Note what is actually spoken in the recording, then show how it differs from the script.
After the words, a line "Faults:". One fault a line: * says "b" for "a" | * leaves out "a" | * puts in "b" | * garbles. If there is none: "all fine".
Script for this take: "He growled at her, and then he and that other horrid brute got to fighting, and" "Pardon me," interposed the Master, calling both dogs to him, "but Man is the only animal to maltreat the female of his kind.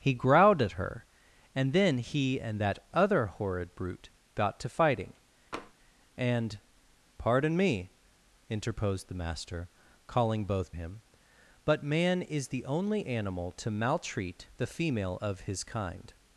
"He growled at her, and then he and that other horrid brute got to fighting, and" "Pardon me," interposed the Master, calling both him, "but Man is the only animal to maltreat the female of his kind.
Faults:
* leaves out "dogs to"